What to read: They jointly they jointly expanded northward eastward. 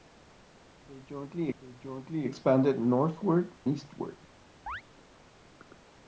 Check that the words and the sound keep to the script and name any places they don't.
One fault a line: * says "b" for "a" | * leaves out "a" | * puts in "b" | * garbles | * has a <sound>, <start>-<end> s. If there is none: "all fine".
* has a chirp, 4.7-4.8 s